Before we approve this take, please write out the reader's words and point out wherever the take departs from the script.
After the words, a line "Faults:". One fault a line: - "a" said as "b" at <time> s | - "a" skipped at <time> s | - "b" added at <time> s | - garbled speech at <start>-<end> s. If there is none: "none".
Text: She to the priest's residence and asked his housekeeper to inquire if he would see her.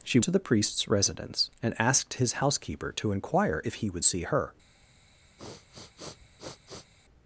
She to the priest's residence and asked his housekeeper to inquire if he would see her.
Faults:
none